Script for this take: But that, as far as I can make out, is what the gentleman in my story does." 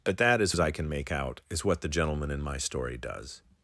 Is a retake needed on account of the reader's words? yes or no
yes